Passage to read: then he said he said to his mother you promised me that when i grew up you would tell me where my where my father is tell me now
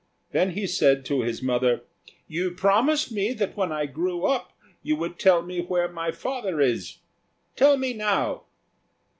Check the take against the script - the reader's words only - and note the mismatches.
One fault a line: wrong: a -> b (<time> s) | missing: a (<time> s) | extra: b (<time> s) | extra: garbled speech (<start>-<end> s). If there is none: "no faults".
missing: he said (1.1 s)
missing: where my (6.1 s)